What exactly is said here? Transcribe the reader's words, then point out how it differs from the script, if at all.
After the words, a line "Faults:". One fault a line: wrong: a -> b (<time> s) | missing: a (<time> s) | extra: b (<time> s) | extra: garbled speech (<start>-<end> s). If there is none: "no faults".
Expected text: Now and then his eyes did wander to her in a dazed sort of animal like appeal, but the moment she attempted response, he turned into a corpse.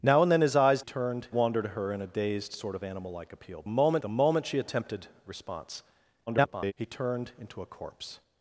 Now and then his eyes turned wander to her in a dazed sort of animal like appeal, moment the moment she attempted response, [garbled] he turned into a corpse.
Faults:
wrong: did -> turned (0.8 s)
wrong: but -> moment (3.7 s)
extra: garbled speech (6.3-6.7 s)